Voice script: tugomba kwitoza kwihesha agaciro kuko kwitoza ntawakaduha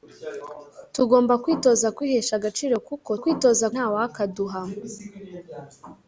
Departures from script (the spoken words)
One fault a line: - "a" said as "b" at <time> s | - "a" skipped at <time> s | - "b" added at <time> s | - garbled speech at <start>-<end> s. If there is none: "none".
none